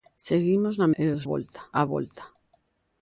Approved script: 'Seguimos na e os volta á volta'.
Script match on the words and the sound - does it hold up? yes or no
yes